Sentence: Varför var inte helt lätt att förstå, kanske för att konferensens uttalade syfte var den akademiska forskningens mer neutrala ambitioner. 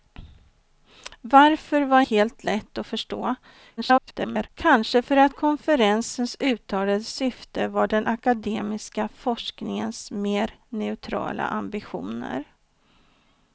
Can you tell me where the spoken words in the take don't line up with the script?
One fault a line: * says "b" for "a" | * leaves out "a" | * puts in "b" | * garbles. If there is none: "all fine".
* leaves out "inte"
* garbles